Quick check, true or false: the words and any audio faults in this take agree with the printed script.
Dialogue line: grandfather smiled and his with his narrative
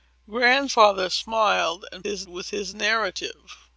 true